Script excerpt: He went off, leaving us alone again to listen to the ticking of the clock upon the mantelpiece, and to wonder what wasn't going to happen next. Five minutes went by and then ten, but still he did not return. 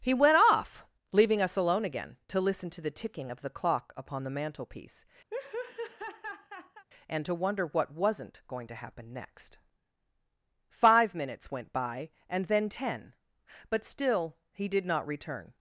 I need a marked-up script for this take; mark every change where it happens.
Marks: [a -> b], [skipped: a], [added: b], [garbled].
He went off, leaving us alone again to listen to the ticking of the clock upon the mantelpiece, and to wonder what wasn't going to happen next. Five minutes went by and then ten, but still he did not return.